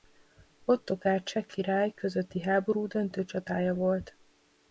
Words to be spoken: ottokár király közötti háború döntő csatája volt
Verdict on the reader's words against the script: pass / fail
fail